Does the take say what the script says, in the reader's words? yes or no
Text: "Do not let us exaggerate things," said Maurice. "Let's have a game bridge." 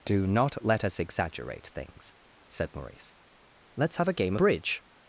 yes